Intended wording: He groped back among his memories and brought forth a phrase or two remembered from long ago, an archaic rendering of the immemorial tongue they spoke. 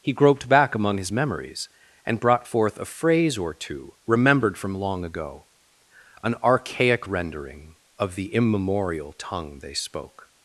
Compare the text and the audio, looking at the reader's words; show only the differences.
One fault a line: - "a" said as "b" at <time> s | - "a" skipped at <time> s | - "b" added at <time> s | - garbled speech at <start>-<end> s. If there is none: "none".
none